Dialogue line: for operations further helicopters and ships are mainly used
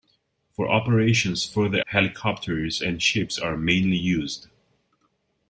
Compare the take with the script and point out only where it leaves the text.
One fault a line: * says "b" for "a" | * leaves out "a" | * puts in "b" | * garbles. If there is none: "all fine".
all fine